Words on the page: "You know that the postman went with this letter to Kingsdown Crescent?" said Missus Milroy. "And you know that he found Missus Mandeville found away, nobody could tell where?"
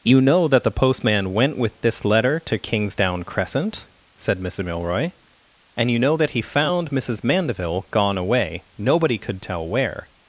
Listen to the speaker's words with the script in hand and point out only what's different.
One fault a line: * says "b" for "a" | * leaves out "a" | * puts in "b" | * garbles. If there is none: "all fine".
* says "gone" for "found"